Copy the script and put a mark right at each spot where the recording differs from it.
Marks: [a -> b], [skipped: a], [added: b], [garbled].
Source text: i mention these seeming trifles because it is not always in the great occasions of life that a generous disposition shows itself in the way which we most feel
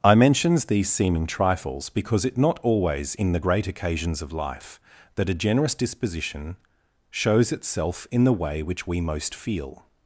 i [mention -> mentions] these seeming trifles because it [skipped: is] not always in the great occasions of life that a generous disposition shows itself in the way which we most feel